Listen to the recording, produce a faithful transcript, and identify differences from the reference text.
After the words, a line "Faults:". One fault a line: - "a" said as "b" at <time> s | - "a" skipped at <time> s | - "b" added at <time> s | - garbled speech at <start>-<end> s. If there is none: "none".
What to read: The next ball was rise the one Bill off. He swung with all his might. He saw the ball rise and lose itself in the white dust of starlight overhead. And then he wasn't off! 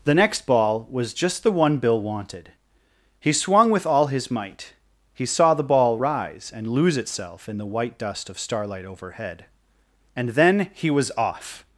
The next ball was just the one Bill wanted. He swung with all his might. He saw the ball rise and lose itself in the white dust of starlight overhead. And then he was off!
Faults:
- "rise" said as "just" at 1.1 s
- "off" said as "wanted" at 2.0 s
- "wasn't" said as "was" at 10.9 s